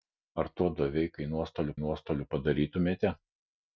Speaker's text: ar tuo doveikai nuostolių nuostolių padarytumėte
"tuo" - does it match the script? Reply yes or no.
yes